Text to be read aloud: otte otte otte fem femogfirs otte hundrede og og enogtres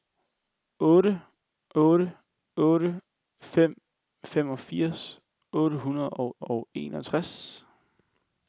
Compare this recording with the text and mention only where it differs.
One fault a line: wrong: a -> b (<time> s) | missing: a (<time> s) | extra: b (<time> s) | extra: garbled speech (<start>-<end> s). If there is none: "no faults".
no faults